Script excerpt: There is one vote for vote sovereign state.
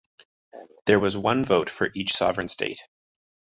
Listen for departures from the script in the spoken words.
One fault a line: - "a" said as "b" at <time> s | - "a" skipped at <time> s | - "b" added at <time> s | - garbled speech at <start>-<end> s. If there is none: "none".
- "is" said as "was" at 1.0 s
- "vote" said as "each" at 1.9 s